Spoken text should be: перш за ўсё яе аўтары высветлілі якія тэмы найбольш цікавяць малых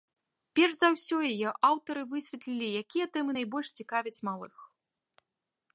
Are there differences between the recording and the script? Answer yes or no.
no